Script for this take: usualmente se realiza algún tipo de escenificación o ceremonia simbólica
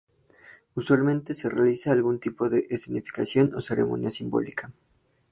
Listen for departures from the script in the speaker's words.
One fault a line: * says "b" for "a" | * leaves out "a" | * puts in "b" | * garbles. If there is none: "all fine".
all fine